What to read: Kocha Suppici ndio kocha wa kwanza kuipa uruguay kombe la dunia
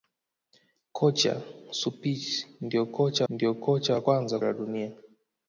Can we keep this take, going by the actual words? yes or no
no